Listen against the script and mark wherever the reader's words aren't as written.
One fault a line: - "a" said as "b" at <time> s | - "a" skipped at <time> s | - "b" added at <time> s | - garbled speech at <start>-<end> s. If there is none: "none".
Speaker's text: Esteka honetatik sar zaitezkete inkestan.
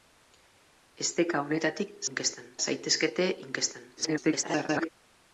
- "sar" said as "inkestan" at 2.1 s
- garbled speech at 4.0-4.9 s